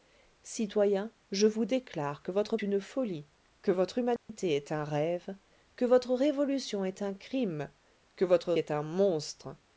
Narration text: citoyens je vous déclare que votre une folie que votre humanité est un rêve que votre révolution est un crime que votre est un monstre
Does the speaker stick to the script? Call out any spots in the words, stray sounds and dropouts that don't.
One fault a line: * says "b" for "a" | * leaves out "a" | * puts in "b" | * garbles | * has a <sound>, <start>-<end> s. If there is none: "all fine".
* has a dropout, 4.2-4.3 s